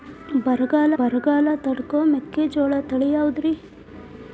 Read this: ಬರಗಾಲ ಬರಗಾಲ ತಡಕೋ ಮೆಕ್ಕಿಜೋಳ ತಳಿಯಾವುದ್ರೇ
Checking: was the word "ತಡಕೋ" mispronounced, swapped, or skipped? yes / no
no